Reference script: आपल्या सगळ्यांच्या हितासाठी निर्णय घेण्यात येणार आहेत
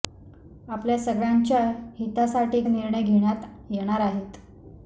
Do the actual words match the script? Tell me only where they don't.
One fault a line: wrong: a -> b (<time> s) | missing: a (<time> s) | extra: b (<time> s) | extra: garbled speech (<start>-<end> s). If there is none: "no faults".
no faults